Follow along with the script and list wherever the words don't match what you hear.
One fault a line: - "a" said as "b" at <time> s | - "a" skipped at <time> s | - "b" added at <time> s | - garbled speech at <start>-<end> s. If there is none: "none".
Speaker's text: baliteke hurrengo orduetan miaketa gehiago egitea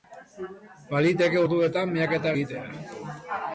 - "hurrengo" skipped at 1.4 s
- "gehiago" skipped at 2.3 s